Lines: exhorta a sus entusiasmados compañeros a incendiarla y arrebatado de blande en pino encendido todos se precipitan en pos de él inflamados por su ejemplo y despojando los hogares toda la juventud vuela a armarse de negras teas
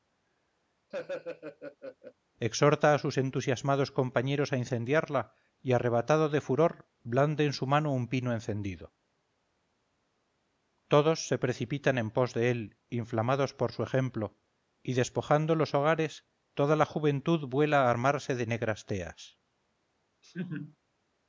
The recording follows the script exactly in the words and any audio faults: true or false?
false